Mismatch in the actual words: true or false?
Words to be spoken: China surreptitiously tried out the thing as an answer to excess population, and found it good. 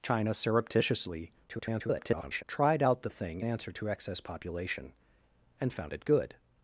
true